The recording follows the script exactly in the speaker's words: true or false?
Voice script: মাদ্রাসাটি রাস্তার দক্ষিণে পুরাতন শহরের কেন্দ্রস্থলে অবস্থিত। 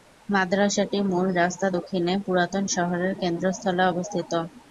false